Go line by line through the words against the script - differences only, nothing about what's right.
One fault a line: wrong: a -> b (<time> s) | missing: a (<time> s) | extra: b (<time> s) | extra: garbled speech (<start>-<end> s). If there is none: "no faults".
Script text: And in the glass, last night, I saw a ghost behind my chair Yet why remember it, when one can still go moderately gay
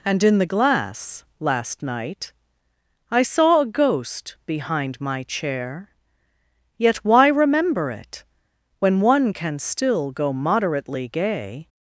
no faults